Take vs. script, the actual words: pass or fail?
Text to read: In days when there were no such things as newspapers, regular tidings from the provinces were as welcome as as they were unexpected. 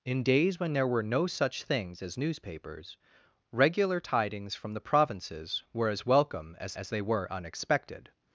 pass